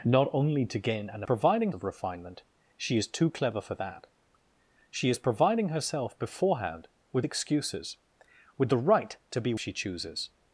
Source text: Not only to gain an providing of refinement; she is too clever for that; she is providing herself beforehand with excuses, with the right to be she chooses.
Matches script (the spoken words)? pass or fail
pass